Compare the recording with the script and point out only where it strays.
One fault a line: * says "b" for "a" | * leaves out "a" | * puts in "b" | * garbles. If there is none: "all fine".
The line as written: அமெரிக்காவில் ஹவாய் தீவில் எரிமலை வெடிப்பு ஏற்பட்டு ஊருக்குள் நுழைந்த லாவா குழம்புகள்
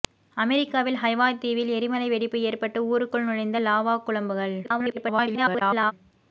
* garbles